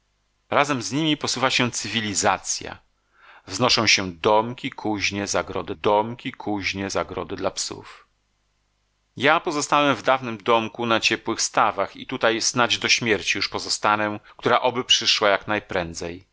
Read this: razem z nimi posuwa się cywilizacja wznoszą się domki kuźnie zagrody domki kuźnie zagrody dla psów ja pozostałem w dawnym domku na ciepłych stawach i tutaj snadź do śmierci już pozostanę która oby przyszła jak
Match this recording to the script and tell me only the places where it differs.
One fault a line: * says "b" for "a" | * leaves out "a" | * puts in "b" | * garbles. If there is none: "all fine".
all fine